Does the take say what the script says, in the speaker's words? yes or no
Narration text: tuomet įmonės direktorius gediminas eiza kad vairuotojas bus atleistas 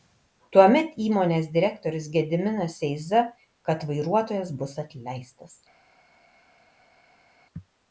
yes